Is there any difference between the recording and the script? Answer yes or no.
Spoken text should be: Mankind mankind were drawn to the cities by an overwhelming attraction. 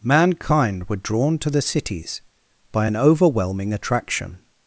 yes